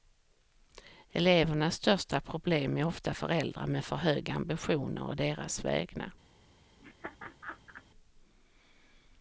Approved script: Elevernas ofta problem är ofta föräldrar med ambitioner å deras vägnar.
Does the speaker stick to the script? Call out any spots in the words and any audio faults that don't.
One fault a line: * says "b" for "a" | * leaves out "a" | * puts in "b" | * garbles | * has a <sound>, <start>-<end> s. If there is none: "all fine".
* says "största" for "ofta"
* puts in "för höga"
* has a laugh, 6.8-7.8 s